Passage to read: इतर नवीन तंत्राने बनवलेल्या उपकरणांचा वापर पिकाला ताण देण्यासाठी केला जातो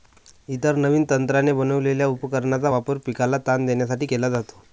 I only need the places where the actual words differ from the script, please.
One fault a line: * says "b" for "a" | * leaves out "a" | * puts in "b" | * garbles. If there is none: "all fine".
all fine